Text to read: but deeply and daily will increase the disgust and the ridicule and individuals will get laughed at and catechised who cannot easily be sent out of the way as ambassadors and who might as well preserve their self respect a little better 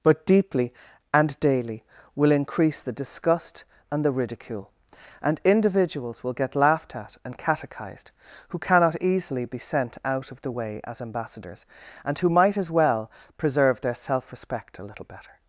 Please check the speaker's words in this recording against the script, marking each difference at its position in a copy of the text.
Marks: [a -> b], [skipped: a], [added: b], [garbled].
but deeply and daily will increase the disgust and the ridicule and individuals will get laughed at and catechised who cannot easily be sent out of the way as ambassadors and who might as well preserve their self respect a little better